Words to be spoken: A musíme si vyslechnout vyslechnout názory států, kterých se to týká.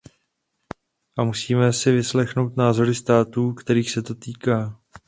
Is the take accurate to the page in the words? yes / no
no